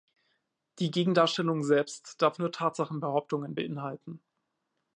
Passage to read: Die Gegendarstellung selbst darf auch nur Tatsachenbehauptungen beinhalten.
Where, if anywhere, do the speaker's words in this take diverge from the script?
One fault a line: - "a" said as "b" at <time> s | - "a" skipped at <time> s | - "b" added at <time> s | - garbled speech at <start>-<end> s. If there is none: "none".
- "auch" skipped at 2.4 s